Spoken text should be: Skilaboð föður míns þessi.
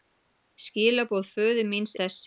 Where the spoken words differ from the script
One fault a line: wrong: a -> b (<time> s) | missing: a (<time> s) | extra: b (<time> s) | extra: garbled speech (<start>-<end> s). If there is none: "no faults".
no faults